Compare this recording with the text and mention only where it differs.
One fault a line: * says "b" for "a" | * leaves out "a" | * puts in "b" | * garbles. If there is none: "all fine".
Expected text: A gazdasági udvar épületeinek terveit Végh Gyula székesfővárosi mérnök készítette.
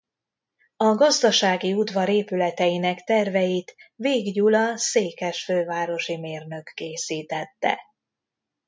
all fine